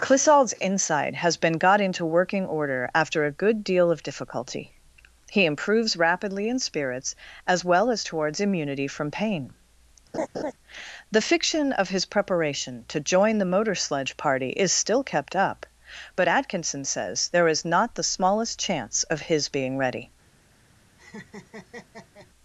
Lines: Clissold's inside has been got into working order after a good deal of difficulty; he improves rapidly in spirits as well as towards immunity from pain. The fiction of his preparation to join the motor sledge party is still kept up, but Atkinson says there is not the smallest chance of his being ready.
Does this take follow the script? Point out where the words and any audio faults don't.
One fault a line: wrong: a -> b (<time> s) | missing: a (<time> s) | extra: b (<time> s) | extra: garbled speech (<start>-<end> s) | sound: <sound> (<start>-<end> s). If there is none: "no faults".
sound: laugh (10.1-10.5 s)
sound: laugh (21.0-22.3 s)